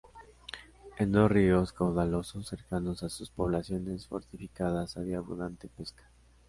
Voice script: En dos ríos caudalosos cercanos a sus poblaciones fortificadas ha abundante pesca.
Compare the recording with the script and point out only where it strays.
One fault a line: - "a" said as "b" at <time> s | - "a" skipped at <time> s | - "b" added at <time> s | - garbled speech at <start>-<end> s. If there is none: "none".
- "ha" said as "había" at 5.0 s